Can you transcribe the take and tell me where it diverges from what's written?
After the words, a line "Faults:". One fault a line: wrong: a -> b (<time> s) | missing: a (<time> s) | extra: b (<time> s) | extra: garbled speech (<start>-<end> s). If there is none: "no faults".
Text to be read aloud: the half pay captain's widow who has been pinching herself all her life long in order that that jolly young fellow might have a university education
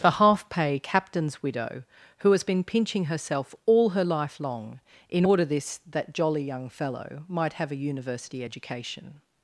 the half pay captain's widow who has been pinching herself all her life long in order this that jolly young fellow might have a university education
Faults:
wrong: that -> this (5.4 s)